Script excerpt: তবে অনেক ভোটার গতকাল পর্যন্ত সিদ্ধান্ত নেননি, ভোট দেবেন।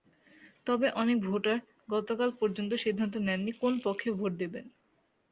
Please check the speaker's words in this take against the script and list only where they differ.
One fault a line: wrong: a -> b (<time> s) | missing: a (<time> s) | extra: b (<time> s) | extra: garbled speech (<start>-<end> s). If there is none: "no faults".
extra: কোন পক্ষে (3.6 s)